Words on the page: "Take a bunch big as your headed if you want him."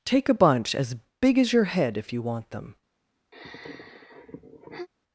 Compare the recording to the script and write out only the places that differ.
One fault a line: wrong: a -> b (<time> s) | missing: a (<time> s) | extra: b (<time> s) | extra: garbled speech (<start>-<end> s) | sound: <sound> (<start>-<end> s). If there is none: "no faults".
extra: as (0.7 s)
wrong: headed -> head (1.7 s)
wrong: him -> them (2.5 s)
sound: sigh (3.3-4.9 s)